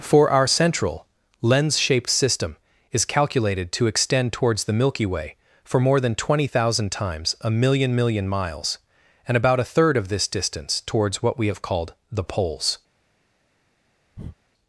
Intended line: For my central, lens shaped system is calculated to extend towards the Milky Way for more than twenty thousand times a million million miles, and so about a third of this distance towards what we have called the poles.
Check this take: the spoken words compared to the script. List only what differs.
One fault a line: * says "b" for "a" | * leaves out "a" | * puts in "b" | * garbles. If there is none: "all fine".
* says "our" for "my"
* leaves out "so"